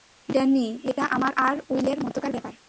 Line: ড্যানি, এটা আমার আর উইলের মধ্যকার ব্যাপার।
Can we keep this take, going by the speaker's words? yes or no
yes